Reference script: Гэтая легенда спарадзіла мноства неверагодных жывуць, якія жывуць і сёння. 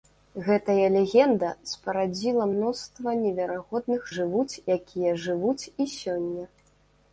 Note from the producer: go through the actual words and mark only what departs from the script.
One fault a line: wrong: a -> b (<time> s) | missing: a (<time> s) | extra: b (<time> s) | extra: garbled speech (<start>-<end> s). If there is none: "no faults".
no faults